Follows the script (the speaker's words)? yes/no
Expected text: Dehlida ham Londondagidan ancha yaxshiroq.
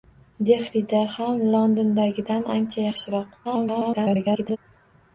no